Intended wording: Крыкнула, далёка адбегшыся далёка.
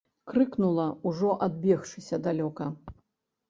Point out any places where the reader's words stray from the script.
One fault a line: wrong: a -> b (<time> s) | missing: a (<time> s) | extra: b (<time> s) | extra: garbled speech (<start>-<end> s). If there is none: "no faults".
wrong: далёка -> ужо (1.0 s)